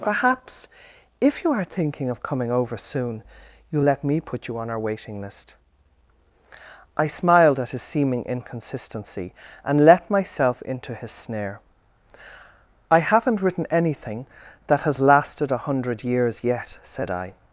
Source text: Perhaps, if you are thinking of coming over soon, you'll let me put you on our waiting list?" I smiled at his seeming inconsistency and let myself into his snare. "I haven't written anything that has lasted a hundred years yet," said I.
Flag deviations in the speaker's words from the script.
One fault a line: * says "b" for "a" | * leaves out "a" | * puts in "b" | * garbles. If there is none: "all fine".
all fine